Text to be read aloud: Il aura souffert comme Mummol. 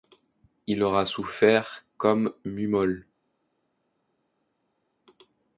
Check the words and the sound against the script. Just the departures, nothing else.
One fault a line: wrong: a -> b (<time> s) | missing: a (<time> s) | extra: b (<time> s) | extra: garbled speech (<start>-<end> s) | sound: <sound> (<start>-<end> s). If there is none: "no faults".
no faults